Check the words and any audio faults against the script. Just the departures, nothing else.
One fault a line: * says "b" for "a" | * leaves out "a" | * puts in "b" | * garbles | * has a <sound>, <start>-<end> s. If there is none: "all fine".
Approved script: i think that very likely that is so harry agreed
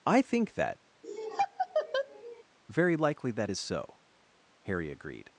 * has a laugh, 1.0-2.4 s